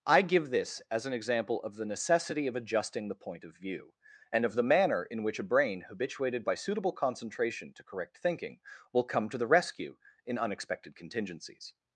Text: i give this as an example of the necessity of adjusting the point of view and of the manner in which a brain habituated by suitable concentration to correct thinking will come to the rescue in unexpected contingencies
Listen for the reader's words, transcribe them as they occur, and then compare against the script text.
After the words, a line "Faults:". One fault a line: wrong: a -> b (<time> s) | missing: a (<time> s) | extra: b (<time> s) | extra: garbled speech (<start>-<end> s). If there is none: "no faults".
i give this as an example of the necessity of adjusting the point of view and of the manner in which a brain habituated by suitable concentration to correct thinking will come to the rescue in unexpected contingencies
Faults:
no faults